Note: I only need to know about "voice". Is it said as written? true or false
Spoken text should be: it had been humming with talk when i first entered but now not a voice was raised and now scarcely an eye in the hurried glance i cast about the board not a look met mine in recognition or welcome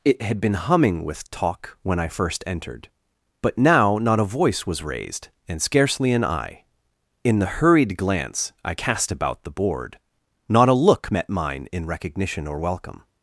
true